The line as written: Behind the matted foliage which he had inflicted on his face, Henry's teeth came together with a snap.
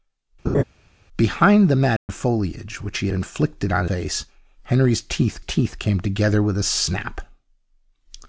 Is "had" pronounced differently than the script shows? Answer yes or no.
yes